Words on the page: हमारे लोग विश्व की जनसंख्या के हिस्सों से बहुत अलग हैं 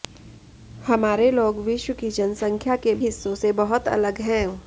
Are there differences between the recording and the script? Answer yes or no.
no